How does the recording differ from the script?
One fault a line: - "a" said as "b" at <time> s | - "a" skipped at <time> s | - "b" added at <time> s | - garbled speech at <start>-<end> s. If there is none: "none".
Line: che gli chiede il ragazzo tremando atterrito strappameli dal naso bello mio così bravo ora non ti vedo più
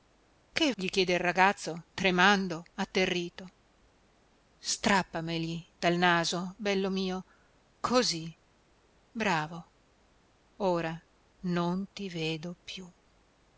none